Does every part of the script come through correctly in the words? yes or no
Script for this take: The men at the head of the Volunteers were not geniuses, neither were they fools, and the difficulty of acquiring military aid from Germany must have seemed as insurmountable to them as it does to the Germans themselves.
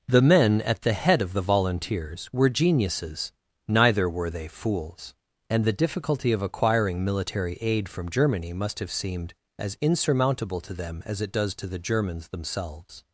no